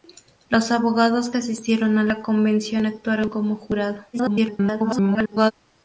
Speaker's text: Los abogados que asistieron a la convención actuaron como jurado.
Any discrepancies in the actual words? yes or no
yes